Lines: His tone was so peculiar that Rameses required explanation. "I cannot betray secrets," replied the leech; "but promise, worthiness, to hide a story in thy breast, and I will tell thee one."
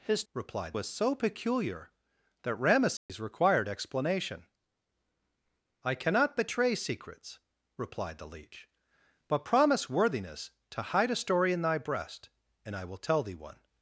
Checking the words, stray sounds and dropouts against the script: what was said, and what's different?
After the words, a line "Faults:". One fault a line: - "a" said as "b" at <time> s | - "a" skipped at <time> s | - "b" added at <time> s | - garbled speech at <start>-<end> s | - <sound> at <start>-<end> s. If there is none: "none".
His replied was so peculiar that Rameses required explanation. "I cannot betray secrets," replied the leech; "but promise, worthiness, to hide a story in thy breast, and I will tell thee one."
Faults:
- "tone" said as "replied" at 0.3 s
- dropout at 3.0-3.1 s